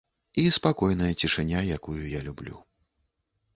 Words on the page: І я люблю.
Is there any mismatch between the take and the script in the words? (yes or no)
yes